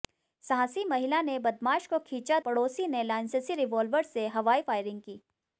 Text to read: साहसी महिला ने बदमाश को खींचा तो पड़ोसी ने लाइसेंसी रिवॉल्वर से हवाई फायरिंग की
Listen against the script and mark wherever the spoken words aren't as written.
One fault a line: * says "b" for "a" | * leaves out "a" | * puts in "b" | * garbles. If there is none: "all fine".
* leaves out "तो"